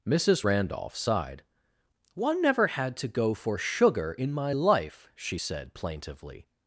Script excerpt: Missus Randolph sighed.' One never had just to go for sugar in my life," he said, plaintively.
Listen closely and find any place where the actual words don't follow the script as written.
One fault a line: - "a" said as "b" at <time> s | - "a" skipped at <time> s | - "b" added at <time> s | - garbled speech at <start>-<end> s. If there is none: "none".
- "just" skipped at 3.0 s
- "he" said as "she" at 5.2 s